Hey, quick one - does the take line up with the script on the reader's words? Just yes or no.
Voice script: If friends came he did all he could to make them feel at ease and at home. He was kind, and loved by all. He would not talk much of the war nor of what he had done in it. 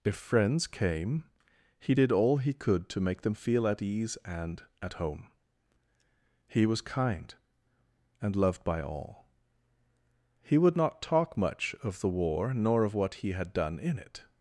yes